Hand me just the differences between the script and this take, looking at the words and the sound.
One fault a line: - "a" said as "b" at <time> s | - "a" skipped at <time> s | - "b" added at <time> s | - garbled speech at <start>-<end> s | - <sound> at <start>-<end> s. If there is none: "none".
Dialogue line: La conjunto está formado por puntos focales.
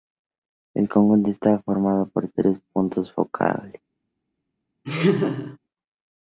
- "La" said as "El" at 0.7 s
- "tres" added at 2.3 s
- laugh at 4.8-5.6 s